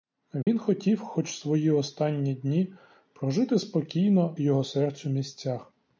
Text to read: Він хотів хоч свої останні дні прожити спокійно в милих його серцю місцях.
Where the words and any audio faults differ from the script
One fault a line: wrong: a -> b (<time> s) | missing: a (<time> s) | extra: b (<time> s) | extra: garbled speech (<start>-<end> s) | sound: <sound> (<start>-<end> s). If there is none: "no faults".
sound: dropout (0.4-0.5 s)
missing: в милих (4.4 s)